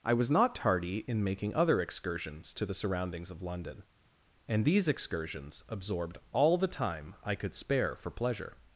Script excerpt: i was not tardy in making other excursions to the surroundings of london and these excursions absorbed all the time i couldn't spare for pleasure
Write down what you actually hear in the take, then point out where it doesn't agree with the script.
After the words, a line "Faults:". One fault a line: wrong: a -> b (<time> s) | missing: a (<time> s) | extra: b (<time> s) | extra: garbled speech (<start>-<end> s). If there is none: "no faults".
i was not tardy in making other excursions to the surroundings of london and these excursions absorbed all the time i could spare for pleasure
Faults:
wrong: couldn't -> could (7.4 s)